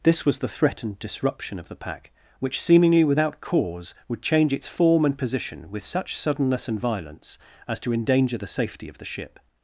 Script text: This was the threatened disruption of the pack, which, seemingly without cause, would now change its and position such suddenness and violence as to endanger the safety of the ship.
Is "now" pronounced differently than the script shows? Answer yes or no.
yes